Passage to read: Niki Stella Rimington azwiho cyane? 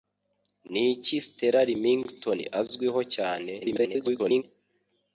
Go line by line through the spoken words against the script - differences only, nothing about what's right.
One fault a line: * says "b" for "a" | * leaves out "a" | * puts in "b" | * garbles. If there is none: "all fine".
* garbles